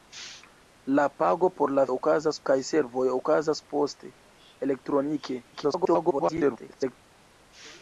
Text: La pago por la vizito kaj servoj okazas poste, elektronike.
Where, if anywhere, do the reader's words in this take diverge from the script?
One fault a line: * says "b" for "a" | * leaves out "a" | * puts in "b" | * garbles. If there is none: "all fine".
* says "okazas" for "vizito"
* garbles